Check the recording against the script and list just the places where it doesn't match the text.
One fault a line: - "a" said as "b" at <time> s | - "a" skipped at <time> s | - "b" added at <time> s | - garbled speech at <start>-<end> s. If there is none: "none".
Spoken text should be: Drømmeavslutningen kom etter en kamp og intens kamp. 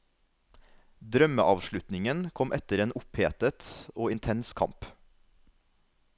- "kamp" said as "opphetet" at 3.0 s